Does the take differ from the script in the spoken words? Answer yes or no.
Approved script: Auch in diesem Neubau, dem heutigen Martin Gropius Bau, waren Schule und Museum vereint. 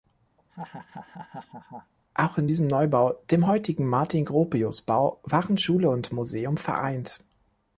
no